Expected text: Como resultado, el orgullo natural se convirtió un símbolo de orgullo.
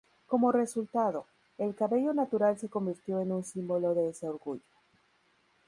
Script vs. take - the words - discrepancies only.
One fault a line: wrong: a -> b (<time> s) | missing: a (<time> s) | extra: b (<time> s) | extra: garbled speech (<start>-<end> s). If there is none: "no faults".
wrong: orgullo -> cabello (1.8 s)
extra: en (3.2 s)
extra: ese (4.1 s)